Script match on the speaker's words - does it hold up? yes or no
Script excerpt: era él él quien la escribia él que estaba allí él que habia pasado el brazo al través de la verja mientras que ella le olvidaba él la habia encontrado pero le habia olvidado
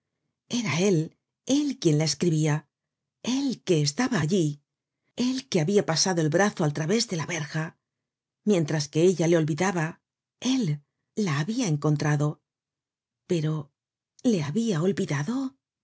yes